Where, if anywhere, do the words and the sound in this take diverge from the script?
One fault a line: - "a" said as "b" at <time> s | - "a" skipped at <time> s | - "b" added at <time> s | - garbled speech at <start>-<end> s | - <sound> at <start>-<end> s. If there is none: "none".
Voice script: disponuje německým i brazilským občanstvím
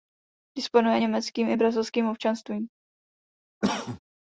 - cough at 3.6-4.0 s